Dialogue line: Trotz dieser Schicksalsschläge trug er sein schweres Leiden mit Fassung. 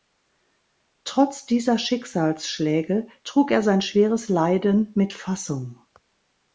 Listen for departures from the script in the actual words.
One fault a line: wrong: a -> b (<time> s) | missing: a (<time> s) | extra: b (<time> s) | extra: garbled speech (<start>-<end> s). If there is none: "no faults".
no faults